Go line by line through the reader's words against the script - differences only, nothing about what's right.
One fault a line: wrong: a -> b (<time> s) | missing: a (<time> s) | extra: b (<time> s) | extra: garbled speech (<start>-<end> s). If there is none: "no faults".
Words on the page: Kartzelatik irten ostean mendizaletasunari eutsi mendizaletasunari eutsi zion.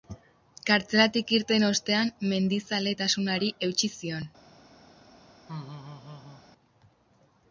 missing: mendizaletasunari eutsi (3.9 s)